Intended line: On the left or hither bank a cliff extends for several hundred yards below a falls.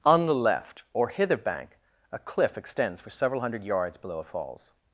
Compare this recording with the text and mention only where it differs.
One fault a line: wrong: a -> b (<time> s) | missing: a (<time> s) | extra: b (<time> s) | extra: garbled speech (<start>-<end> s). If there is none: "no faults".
no faults